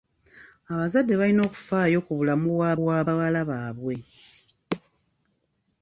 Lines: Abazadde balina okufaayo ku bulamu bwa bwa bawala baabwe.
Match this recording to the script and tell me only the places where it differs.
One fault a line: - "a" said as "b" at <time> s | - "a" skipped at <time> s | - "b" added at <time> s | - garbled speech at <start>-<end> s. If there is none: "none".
none